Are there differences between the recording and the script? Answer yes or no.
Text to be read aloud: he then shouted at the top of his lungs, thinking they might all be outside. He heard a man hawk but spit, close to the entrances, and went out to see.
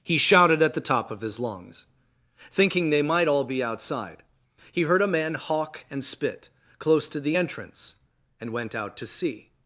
yes